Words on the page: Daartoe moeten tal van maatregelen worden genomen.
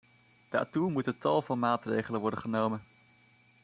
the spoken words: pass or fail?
pass